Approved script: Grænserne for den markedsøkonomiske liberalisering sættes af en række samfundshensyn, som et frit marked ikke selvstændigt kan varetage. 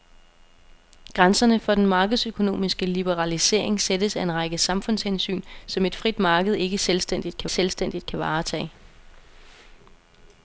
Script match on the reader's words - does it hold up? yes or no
no